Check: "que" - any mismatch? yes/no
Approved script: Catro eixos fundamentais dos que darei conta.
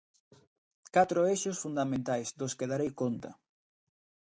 no